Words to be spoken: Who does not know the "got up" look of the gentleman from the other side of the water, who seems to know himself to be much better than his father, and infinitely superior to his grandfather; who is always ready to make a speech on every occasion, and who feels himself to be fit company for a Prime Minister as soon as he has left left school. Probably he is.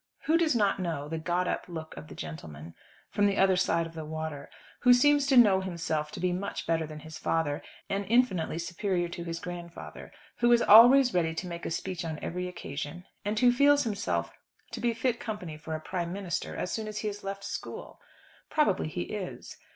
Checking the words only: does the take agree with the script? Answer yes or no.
no